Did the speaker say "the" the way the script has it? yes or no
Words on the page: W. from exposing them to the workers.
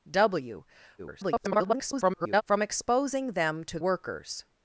no